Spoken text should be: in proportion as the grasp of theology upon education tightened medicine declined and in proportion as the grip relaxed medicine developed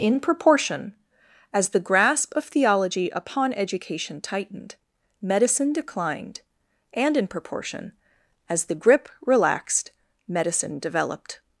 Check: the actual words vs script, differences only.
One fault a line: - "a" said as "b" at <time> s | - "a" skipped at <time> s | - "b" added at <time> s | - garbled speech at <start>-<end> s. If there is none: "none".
none